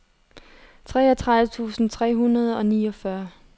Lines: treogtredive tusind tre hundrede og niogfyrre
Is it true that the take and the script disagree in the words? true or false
false